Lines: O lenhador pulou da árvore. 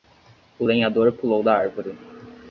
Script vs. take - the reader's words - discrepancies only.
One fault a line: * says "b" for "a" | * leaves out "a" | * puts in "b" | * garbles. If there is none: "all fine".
all fine